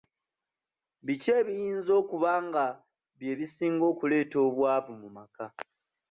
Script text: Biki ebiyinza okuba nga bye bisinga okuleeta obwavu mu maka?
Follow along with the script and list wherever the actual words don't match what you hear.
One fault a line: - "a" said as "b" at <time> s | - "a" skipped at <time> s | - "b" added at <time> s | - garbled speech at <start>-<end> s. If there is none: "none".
none